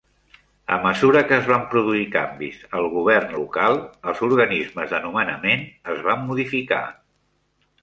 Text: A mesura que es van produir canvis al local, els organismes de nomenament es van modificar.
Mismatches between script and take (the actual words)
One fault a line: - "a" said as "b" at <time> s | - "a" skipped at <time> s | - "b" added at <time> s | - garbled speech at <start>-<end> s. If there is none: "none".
- "govern" added at 3.0 s